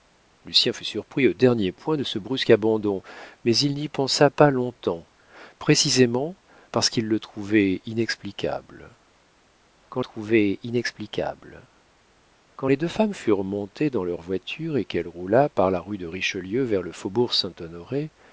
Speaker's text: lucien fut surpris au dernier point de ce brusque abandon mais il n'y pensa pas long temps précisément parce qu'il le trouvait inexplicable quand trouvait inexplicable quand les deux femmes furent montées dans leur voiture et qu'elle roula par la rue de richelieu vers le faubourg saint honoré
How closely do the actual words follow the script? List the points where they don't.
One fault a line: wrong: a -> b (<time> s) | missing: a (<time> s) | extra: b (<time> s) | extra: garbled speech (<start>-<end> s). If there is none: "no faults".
no faults